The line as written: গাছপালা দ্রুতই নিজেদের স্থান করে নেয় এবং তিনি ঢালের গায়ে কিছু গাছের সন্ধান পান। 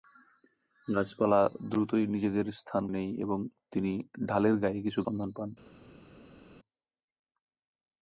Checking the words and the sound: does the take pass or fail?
fail